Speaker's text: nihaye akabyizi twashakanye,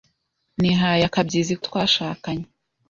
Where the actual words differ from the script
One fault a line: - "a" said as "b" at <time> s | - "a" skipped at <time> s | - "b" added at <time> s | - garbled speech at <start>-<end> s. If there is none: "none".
none